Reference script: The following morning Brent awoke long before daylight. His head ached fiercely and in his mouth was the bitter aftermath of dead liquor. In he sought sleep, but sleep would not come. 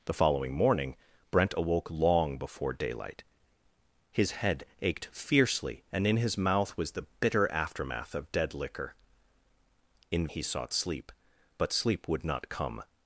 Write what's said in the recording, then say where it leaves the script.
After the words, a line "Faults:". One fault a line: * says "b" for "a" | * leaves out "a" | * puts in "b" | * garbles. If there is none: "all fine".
The following morning Brent awoke long before daylight. His head ached fiercely and in his mouth was the bitter aftermath of dead liquor. In he sought sleep, but sleep would not come.
Faults:
all fine